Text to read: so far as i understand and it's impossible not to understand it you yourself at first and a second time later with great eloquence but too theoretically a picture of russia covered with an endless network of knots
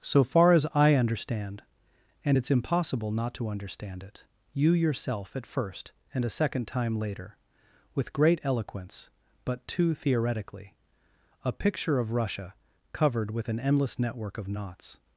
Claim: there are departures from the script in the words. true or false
false